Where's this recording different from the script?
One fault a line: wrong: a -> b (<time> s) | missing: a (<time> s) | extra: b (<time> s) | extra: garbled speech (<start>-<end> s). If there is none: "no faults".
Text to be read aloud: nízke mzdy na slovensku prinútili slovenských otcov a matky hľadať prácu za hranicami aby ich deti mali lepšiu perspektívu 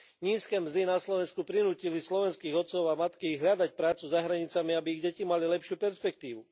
no faults